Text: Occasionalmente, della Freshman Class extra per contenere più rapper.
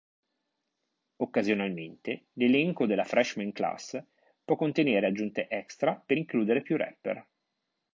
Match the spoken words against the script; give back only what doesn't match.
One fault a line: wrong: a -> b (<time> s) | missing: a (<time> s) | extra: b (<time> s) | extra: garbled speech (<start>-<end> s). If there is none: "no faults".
extra: l'elenco (2.4 s)
extra: può contenere aggiunte (4.5 s)
wrong: contenere -> includere (6.1 s)